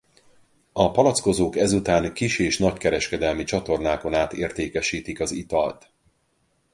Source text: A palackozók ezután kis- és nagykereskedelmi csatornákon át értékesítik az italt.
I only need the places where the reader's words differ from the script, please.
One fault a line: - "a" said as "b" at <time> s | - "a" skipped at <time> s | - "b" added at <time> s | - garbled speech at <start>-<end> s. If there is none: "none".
none